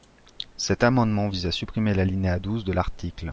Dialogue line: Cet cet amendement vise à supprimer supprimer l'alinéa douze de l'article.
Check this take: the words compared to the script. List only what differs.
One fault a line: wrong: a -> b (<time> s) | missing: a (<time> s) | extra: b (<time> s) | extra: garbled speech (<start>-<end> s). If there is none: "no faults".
missing: cet (0.8 s)
missing: supprimer (1.9 s)